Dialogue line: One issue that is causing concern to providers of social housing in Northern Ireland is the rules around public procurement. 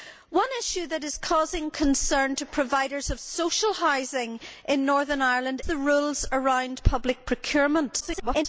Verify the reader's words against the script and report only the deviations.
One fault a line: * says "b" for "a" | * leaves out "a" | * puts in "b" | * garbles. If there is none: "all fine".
* leaves out "is"
* garbles